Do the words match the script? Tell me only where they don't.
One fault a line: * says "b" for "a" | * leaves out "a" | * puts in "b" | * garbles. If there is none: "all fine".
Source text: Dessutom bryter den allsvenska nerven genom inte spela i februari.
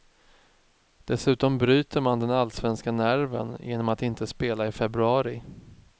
* puts in "man"
* puts in "att"